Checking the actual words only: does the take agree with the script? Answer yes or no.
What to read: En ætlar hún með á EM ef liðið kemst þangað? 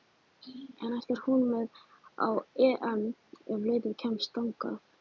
yes